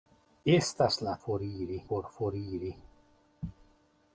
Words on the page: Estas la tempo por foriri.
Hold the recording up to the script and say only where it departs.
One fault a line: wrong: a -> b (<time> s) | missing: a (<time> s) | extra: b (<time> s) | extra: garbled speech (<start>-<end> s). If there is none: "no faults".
wrong: tempo -> foriri (1.2 s)